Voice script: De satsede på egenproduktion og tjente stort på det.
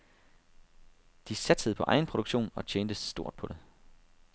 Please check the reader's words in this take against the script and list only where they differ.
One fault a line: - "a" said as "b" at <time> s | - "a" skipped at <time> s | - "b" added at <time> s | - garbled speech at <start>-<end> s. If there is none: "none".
none